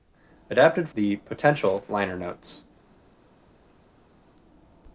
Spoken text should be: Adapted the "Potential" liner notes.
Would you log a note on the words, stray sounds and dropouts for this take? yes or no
no